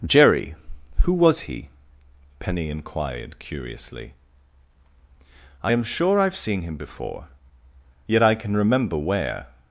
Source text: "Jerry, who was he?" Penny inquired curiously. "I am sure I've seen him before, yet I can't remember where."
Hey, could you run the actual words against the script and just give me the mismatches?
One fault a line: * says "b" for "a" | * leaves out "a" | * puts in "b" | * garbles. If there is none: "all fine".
* says "can" for "can't"